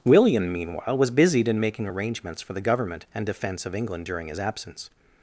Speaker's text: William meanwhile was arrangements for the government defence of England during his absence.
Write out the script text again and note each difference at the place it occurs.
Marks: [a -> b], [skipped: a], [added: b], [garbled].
William meanwhile was [added: busied in making] arrangements for the government [added: and] defence of England during his absence.